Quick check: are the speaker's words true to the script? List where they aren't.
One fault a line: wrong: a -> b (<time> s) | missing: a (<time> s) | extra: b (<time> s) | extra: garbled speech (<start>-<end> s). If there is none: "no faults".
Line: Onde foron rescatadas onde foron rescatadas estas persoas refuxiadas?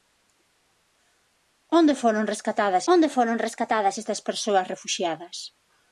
no faults